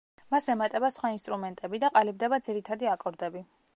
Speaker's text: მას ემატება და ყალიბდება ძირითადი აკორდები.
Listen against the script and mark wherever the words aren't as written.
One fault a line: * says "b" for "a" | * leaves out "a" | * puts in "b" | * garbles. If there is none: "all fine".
* puts in "სხვა ინსტრუმენტები"